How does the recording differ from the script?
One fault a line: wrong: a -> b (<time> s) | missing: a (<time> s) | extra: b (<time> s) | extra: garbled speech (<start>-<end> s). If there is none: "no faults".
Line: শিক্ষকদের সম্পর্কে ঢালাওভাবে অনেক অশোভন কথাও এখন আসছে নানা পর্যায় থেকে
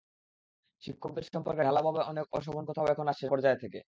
missing: নানা (3.2 s)